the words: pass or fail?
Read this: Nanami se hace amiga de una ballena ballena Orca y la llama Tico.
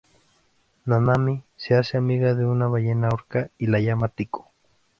fail